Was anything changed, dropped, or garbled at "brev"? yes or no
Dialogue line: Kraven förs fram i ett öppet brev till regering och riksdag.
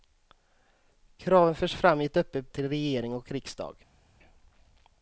yes